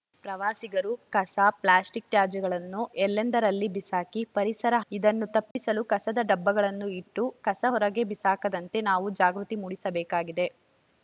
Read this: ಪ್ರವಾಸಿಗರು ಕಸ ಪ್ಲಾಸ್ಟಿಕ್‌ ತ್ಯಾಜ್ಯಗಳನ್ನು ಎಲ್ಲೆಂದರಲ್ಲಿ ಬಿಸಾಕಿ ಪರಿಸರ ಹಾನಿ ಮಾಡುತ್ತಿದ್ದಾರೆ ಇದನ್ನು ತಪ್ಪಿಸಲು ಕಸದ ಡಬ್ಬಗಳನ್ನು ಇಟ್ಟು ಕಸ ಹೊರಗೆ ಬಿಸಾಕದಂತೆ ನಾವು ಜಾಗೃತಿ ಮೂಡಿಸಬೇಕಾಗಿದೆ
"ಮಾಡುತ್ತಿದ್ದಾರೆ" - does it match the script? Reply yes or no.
no